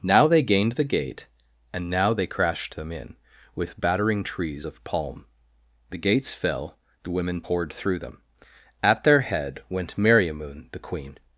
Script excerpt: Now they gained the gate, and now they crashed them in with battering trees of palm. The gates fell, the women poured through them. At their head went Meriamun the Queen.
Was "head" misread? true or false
false